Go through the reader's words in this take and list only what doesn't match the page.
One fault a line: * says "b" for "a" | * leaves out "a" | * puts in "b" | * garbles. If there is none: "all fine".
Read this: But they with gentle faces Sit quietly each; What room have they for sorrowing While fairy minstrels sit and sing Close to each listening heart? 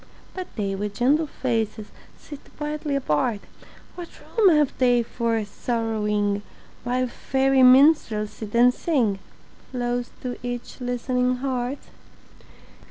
* says "apart" for "each"